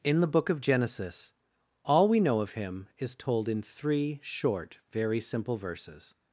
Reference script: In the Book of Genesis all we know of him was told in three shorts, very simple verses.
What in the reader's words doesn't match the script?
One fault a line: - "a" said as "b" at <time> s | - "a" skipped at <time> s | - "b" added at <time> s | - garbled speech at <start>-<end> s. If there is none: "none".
- "was" said as "is" at 3.0 s
- "shorts" said as "short" at 4.2 s